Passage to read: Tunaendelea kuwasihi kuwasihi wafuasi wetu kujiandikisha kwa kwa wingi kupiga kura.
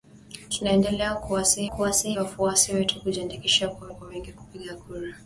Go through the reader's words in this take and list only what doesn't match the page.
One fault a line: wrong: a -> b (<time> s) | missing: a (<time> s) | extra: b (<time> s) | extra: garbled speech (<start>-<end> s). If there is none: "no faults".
no faults